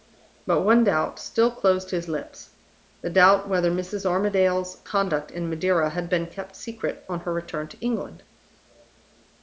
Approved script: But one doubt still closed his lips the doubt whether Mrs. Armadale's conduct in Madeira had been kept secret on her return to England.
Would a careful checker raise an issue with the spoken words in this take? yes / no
no